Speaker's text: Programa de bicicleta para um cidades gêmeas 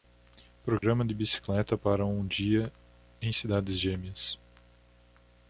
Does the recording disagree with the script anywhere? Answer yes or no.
yes